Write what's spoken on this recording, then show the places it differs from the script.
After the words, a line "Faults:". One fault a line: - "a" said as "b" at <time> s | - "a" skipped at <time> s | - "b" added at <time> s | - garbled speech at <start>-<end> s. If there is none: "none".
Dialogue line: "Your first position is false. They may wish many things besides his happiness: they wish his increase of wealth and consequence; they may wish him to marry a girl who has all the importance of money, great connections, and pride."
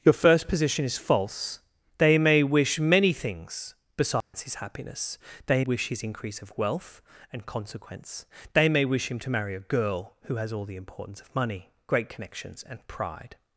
"Your first position is false. They may wish many things besides his happiness: they wish his increase of wealth and consequence; they may wish him to marry a girl who has all the importance of money, great connections, and pride."
Faults:
none